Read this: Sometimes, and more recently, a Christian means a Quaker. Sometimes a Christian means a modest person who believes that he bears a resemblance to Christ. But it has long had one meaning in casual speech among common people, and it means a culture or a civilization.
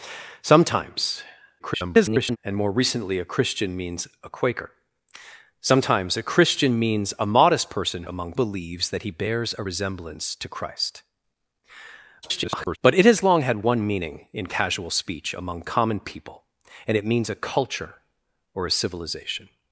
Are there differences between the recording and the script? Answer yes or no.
yes